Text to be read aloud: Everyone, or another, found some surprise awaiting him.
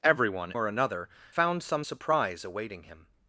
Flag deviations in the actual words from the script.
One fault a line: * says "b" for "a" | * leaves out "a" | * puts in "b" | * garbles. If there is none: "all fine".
all fine